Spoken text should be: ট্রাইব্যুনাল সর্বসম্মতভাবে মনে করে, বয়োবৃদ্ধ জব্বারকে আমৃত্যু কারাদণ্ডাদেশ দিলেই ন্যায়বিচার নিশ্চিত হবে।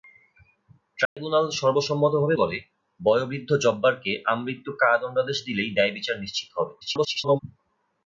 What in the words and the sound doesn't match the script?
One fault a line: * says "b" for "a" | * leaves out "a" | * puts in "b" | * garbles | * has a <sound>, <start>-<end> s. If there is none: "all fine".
* has a dropout, 1.1-1.2 s
* leaves out "মনে"
* garbles